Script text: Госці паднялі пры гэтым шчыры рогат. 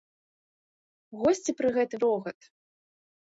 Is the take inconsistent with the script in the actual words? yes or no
yes